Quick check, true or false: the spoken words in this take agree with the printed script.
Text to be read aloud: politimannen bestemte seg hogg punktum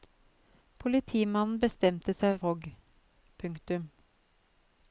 true